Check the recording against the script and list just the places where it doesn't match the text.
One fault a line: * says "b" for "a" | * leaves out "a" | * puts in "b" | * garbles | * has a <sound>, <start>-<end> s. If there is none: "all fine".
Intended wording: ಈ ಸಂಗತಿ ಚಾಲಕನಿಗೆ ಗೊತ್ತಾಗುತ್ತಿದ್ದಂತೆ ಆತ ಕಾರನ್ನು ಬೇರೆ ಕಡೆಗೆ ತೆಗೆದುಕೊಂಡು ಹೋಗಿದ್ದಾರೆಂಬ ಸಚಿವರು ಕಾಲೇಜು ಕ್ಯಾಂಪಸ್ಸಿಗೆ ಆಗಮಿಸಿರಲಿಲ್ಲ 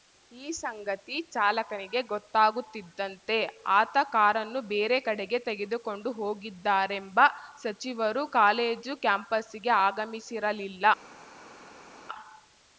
all fine